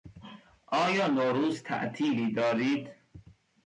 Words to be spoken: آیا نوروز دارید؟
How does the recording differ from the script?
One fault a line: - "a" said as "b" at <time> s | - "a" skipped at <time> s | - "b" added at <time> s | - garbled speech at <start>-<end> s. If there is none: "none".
- "تعطیلی" added at 1.6 s